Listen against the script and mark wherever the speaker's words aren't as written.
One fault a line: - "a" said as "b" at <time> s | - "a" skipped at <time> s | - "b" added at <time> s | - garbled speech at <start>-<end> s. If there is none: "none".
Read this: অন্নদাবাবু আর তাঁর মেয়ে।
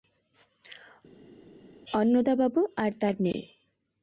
none